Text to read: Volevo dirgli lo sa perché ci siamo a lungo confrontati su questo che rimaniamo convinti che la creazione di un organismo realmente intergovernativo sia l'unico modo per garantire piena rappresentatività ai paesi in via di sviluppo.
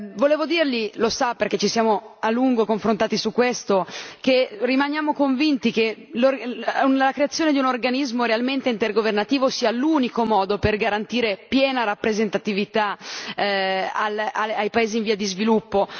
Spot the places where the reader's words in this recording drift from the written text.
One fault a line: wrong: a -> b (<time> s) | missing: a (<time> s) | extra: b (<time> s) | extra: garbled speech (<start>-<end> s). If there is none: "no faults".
no faults